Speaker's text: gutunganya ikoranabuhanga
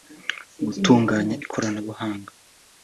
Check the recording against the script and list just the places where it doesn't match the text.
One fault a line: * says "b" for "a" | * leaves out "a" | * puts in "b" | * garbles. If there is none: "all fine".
all fine